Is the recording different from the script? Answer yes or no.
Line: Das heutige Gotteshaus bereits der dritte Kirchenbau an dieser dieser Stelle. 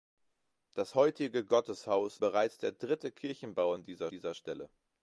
no